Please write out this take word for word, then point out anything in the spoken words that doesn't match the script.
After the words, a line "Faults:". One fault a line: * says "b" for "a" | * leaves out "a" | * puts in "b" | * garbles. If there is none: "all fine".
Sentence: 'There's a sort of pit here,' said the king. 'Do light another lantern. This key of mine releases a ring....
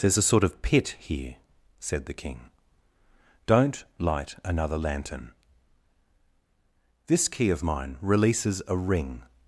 'There's a sort of pit here,' said the king. 'Don't light another lantern. This key of mine releases a ring....
Faults:
* says "Don't" for "Do"